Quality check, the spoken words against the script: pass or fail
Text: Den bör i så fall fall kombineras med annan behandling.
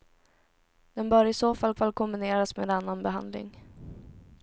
pass